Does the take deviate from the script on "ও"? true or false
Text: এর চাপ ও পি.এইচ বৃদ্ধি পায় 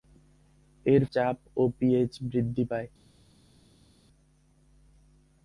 false